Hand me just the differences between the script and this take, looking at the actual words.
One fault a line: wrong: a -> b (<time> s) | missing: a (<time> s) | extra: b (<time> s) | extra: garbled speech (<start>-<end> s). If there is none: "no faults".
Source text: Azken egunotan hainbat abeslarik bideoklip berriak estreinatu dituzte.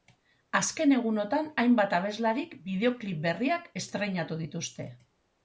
no faults